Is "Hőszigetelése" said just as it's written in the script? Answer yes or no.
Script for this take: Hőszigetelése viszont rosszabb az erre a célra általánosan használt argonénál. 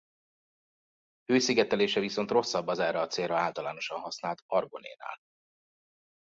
yes